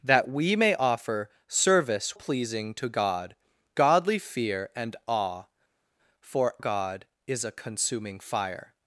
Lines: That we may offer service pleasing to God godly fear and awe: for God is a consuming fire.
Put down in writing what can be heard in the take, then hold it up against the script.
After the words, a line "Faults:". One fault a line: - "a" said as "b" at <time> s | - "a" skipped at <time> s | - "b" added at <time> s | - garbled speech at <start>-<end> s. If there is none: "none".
That we may offer service pleasing to God godly fear and awe: for God is a consuming fire.
Faults:
none